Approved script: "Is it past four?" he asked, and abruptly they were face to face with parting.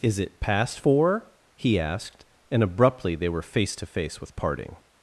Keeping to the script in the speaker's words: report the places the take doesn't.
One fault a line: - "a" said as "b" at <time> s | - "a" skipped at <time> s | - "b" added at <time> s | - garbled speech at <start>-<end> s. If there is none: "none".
none